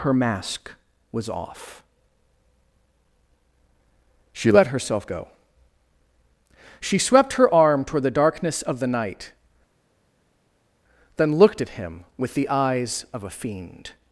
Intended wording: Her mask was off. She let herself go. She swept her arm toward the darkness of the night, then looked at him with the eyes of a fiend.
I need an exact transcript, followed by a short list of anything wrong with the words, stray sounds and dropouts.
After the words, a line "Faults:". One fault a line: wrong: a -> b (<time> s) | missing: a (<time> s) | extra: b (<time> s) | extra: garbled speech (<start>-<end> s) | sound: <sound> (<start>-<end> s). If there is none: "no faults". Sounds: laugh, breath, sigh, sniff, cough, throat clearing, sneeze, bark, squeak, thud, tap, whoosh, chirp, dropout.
Her mask was off. She let herself go. She swept her arm toward the darkness of the night, then looked at him with the eyes of a fiend.
Faults:
no faults